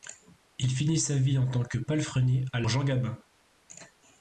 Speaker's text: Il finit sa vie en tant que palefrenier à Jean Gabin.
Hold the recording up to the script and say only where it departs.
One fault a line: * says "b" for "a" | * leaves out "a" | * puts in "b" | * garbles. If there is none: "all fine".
all fine